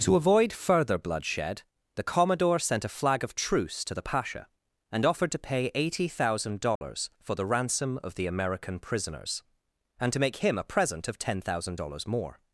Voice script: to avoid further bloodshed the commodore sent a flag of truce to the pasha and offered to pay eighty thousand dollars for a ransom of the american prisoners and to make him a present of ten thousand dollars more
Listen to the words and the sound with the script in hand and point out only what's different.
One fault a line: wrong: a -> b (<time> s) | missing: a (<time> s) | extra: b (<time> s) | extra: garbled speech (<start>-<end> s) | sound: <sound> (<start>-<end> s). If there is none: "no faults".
sound: dropout (6.8-6.8 s)
wrong: a -> the (7.3 s)